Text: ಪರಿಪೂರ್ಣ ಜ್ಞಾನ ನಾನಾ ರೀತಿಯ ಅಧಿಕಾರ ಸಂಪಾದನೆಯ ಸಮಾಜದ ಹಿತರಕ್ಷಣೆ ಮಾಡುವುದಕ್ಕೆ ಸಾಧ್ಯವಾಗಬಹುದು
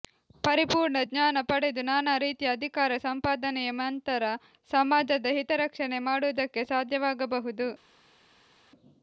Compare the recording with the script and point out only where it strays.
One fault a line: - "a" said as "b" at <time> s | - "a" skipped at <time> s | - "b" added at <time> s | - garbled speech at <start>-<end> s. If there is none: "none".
- "ಪಡೆದು" added at 1.4 s
- "ನಂತರ" added at 3.8 s